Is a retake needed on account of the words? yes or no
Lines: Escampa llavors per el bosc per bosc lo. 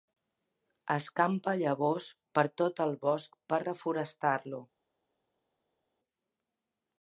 yes